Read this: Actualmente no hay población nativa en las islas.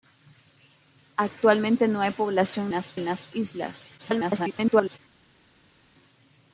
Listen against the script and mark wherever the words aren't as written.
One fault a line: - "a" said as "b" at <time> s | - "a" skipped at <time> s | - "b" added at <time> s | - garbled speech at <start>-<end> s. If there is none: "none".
- "nativa" said as "las" at 2.7 s
- garbled speech at 4.0-5.0 s